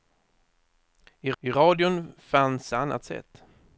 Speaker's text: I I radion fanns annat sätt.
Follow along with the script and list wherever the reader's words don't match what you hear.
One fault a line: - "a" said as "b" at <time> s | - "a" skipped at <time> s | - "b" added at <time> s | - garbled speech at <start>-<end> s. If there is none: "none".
none